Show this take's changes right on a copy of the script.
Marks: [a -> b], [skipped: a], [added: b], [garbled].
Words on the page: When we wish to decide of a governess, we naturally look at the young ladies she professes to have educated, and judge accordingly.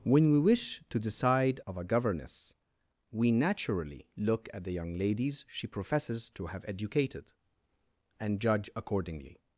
When we wish to decide of a governess, we naturally look at the young ladies she professes to have educated, and judge accordingly.